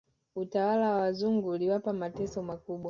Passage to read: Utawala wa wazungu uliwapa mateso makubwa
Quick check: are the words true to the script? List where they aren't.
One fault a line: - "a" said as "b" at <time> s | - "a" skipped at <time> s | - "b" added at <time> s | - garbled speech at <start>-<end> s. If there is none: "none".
none